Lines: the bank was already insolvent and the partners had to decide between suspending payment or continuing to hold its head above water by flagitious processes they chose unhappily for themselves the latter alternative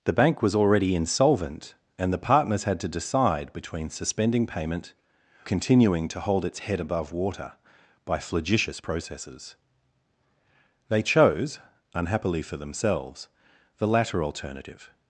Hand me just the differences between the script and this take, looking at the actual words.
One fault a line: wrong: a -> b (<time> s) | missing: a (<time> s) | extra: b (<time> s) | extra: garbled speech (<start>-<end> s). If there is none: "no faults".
missing: or (5.0 s)